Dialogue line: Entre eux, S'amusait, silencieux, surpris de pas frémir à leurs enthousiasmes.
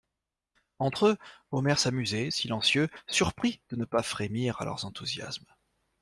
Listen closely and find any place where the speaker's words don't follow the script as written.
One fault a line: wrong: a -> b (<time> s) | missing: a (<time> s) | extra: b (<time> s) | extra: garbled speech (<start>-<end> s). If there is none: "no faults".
extra: Omer (1.5 s)
extra: ne (3.7 s)